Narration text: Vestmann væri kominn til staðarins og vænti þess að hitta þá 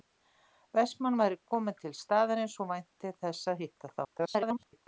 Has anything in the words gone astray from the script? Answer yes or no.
yes